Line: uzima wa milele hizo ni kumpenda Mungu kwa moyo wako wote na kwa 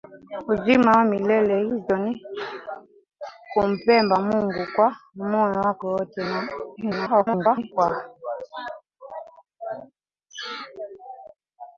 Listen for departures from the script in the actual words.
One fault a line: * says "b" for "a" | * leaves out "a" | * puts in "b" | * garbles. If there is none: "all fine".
* garbles